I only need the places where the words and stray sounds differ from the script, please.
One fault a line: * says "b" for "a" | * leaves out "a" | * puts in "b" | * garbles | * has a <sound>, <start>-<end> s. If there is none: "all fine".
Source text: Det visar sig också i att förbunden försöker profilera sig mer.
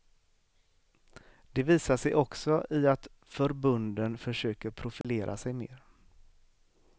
* has a dropout, 5.0-5.0 s